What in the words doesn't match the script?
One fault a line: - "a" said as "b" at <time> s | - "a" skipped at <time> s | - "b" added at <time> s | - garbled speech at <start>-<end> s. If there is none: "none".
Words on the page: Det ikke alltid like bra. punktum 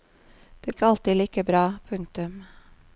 none